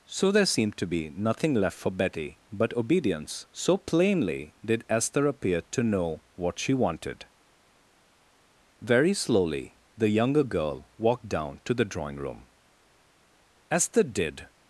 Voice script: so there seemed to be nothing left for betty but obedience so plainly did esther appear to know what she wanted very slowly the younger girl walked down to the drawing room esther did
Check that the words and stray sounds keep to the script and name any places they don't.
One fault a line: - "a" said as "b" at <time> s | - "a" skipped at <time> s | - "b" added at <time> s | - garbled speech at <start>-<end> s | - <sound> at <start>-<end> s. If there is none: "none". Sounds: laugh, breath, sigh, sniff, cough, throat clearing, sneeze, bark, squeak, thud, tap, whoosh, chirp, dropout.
none